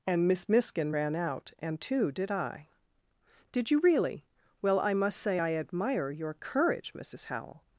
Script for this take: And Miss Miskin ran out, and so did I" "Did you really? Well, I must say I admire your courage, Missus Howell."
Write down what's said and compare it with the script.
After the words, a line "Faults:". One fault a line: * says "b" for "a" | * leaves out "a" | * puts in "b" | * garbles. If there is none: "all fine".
And Miss Miskin ran out, and too did I" "Did you really? Well, I must say I admire your courage, Missus Howell."
Faults:
* says "too" for "so"